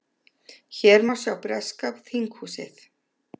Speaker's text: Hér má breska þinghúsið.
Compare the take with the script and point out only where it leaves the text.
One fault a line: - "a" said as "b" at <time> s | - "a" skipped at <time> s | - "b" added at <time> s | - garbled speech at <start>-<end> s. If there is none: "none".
- "sjá" added at 1.2 s